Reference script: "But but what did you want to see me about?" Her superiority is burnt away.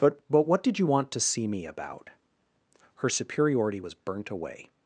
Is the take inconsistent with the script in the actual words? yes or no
yes